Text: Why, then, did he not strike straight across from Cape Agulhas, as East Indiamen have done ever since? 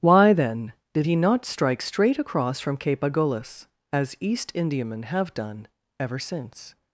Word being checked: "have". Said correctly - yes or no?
yes